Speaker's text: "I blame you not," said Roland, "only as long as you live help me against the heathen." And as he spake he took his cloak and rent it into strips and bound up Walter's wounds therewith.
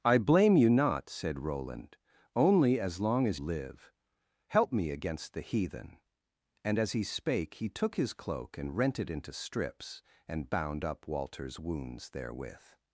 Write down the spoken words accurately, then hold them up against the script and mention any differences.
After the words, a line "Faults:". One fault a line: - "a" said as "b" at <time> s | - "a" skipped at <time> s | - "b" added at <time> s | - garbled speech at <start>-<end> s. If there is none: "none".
"I blame you not," said Roland, "only as long as live help me against the heathen." And as he spake he took his cloak and rent it into strips and bound up Walter's wounds therewith.
Faults:
- "you" skipped at 3.4 s